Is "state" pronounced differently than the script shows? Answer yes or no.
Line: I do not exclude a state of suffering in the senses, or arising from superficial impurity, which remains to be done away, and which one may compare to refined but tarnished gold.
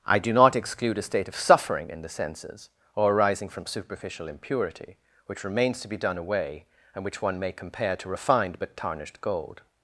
no